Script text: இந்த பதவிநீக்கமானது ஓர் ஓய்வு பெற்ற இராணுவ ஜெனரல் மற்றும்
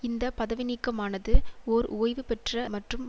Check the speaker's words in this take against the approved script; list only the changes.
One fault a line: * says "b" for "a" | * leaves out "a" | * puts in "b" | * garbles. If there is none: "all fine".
* leaves out "இராணுவ ஜெனரல்"